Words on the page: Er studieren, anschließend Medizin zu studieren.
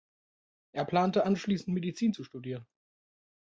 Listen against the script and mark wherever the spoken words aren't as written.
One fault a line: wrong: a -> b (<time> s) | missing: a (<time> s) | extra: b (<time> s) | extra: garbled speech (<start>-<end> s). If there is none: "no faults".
wrong: studieren -> plante (0.8 s)